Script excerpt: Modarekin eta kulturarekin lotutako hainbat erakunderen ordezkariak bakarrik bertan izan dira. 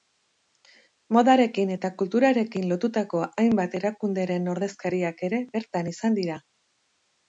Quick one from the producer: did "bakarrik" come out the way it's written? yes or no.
no